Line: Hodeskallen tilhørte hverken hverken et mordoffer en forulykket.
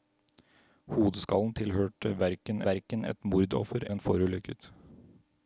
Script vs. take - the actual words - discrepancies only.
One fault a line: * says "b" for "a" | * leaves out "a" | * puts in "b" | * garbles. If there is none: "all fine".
all fine